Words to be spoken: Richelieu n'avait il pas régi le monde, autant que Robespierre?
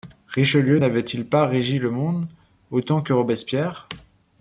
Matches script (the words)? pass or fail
pass